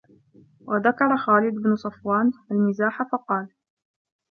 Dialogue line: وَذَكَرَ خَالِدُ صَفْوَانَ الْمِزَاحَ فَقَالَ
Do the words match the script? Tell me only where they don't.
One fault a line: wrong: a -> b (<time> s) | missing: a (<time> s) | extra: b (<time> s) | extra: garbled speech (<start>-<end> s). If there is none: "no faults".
extra: بْنُ (1.5 s)